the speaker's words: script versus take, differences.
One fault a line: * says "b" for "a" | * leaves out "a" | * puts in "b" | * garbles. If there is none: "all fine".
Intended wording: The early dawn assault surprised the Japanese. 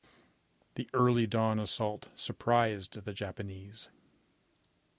all fine